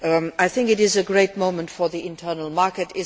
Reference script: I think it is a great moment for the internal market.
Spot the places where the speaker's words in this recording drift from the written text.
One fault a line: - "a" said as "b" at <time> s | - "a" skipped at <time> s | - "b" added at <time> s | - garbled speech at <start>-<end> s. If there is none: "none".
none